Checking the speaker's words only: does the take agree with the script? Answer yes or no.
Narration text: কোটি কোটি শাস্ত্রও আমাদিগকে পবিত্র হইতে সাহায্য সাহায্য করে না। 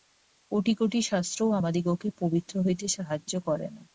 no